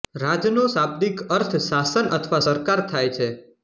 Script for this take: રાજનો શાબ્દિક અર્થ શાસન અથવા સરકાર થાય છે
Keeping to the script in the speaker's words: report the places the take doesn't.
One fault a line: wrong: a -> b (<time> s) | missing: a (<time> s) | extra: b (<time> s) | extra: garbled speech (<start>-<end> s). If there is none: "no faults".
no faults